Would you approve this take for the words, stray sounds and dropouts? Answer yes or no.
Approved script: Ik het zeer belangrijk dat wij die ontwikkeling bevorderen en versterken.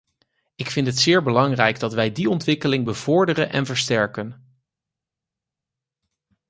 no